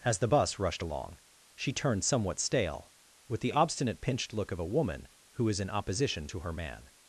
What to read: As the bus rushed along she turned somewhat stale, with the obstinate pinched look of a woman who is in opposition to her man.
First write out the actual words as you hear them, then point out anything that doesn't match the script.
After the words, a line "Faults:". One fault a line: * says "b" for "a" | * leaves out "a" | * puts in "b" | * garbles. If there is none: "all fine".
As the bus rushed along she turned somewhat stale, with the obstinate pinched look of a woman who is in opposition to her man.
Faults:
all fine